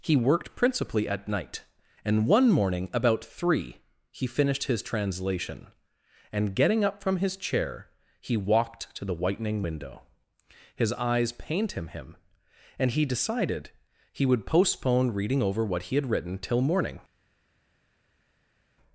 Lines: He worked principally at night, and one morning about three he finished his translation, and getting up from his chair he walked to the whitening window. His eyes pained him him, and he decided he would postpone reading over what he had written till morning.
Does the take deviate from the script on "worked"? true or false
false